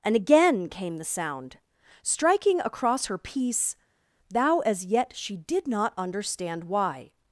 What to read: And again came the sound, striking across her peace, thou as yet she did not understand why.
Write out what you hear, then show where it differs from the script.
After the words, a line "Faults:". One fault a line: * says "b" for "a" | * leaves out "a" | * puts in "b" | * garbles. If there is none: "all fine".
And again came the sound, striking across her peace, thou as yet she did not understand why.
Faults:
all fine